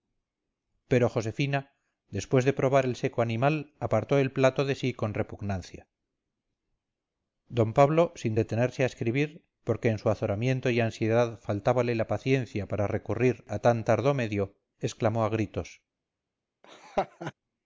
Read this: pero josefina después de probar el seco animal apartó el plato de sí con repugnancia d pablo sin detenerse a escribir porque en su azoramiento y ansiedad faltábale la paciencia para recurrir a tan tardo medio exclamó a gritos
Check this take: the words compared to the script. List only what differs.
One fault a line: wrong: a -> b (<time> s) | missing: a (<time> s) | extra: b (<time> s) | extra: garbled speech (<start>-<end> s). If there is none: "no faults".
no faults